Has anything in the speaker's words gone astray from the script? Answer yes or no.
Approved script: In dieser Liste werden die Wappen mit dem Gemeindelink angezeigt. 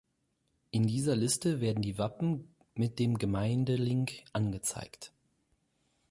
no